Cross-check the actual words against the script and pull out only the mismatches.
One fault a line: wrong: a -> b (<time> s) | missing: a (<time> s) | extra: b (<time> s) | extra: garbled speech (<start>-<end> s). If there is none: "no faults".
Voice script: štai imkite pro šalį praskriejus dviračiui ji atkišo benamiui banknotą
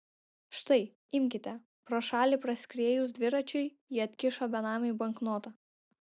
no faults